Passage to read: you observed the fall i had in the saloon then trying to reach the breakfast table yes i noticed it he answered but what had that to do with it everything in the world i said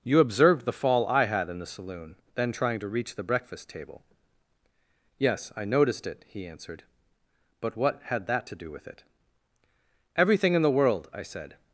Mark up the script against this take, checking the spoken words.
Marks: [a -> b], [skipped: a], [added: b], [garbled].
you observed the fall i had in the saloon then trying to reach the breakfast table yes i noticed it he answered but what had that to do with it everything in the world i said